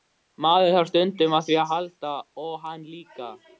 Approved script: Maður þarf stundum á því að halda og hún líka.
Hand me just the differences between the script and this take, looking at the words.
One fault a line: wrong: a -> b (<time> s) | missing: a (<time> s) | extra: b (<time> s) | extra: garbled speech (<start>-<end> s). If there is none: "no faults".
wrong: hún -> hann (2.7 s)